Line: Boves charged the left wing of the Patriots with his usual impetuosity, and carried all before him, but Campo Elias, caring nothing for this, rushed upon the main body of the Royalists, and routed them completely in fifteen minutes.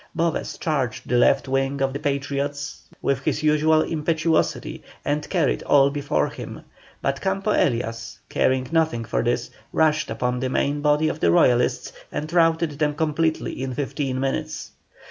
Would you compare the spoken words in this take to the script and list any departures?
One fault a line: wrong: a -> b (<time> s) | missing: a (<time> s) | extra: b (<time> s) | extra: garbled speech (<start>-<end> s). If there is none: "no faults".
no faults